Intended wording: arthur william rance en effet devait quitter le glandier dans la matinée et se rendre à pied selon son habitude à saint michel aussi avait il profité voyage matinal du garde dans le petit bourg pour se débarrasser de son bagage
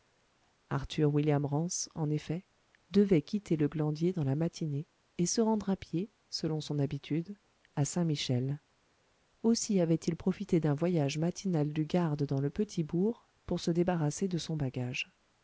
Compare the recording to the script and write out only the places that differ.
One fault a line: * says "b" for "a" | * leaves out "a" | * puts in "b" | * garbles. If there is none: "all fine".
* puts in "d'un"